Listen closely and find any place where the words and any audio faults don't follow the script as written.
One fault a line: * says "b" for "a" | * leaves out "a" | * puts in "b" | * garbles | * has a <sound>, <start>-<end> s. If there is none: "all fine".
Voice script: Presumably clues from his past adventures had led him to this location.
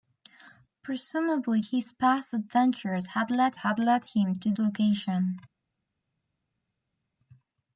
* leaves out "clues from"
* puts in "had led"
* leaves out "this"